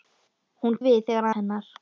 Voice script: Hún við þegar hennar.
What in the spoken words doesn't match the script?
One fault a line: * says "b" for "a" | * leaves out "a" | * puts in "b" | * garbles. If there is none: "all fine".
all fine